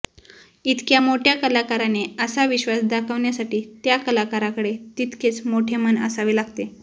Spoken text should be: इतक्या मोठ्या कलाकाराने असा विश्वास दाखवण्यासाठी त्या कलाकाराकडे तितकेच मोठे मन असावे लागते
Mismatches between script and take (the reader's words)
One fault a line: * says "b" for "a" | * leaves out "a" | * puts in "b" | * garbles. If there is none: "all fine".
all fine